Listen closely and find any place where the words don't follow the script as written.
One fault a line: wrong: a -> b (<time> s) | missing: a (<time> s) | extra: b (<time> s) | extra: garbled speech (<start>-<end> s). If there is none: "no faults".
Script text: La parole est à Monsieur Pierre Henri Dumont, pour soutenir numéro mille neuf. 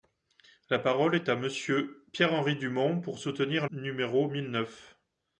no faults